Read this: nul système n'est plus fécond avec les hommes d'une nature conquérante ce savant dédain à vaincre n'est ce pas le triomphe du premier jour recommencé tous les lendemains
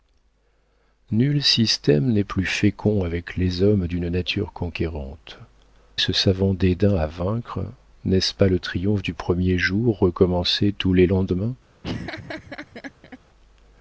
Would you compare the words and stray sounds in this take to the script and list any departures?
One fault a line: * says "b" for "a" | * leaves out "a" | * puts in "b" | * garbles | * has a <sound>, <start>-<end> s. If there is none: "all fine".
* has a laugh, 11.8-13.2 s